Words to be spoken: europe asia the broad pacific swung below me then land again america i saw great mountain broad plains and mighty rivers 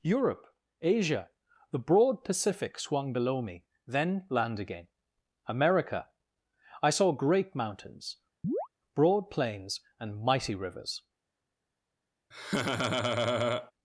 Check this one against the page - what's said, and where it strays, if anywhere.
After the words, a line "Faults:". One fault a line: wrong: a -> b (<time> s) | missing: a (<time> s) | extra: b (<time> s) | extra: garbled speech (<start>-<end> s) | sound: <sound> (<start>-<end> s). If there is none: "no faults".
europe asia the broad pacific swung below me then land again america i saw great mountains broad plains and mighty rivers
Faults:
wrong: mountain -> mountains (7.5 s)
sound: chirp (8.4-8.7 s)
sound: laugh (12.3-13.7 s)